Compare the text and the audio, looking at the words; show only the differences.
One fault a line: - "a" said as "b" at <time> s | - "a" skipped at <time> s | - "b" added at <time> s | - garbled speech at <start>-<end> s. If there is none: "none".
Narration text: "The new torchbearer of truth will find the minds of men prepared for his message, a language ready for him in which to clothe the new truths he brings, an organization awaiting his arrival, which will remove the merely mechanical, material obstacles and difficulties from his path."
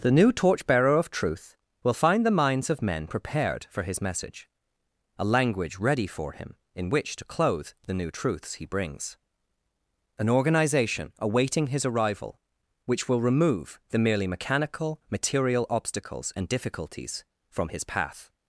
none